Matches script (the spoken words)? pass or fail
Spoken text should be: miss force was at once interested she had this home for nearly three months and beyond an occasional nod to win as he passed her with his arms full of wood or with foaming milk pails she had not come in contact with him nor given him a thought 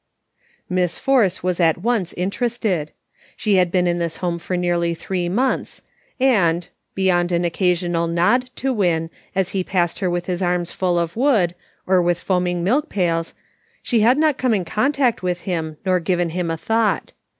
fail